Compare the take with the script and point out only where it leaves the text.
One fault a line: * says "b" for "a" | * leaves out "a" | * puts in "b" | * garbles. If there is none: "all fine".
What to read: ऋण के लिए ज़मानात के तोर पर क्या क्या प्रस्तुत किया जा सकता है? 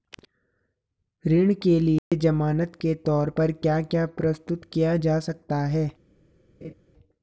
all fine